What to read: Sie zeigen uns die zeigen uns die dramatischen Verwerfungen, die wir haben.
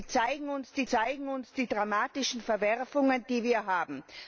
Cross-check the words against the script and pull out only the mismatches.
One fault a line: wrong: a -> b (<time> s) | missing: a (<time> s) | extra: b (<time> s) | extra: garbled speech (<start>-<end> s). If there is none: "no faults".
no faults